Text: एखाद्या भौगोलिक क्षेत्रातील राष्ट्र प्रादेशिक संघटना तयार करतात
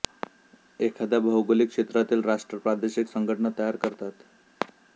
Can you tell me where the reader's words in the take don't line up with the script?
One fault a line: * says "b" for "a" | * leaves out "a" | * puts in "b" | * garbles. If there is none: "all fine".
all fine